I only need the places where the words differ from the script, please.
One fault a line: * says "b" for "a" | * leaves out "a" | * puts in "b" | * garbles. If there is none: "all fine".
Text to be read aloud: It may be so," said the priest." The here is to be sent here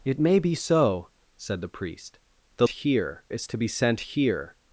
all fine